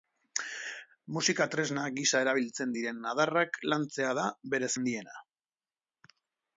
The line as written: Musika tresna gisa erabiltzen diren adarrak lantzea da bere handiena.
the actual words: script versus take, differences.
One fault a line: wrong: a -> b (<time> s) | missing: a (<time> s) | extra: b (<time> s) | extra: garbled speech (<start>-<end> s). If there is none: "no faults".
no faults